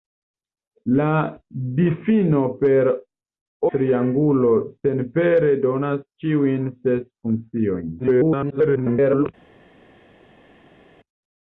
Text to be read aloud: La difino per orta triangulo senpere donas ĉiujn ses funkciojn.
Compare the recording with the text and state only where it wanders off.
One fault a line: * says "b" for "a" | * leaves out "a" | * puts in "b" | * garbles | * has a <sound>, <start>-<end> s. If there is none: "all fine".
* leaves out "orta"
* garbles